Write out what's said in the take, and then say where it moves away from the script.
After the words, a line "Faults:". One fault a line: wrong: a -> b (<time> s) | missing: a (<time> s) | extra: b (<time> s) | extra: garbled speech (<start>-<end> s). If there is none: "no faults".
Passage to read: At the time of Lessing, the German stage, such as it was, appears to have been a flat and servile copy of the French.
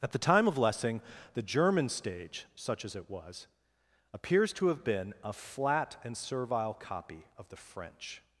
At the time of Lessing, the German stage, such as it was, appears to have been a flat and servile copy of the French.
Faults:
no faults